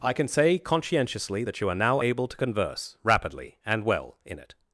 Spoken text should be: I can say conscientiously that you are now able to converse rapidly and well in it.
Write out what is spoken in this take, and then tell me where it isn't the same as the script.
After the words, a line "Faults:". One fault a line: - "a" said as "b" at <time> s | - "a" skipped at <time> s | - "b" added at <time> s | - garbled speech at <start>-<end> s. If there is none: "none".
I can say conscientiously that you are now able to converse rapidly and well in it.
Faults:
none